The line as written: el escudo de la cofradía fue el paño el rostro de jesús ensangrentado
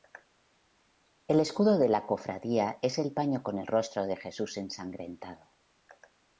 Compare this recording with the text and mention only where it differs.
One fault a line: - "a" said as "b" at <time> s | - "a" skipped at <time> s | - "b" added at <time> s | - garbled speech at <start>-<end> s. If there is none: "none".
- "fue" said as "es" at 2.8 s
- "con" added at 3.4 s